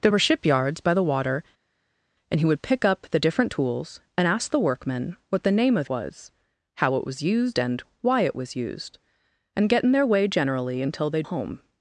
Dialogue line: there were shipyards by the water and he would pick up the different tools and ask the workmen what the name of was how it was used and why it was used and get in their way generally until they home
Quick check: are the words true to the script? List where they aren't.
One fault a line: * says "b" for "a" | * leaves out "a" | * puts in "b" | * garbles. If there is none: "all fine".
all fine